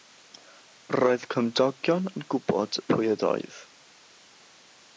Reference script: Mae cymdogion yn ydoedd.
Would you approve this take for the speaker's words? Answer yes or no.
no